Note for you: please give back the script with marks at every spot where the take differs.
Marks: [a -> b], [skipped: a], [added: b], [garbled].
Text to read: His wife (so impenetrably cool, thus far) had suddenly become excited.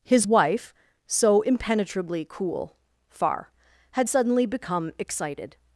His wife (so impenetrably cool, [skipped: thus] far) had suddenly become excited.